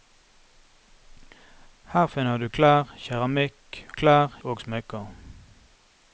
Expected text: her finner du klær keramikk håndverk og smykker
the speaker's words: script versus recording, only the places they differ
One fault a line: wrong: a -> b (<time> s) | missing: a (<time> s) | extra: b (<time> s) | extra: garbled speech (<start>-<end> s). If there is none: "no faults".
wrong: håndverk -> klær (3.9 s)